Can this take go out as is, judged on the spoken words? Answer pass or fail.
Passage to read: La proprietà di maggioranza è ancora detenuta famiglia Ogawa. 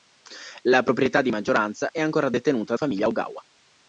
pass